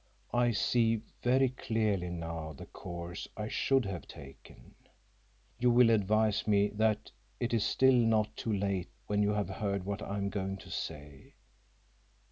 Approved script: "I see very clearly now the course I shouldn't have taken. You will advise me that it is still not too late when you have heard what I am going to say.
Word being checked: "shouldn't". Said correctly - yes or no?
no